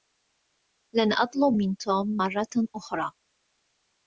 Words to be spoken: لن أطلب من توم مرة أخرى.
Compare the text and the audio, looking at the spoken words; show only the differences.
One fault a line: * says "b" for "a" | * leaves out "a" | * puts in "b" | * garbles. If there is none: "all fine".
all fine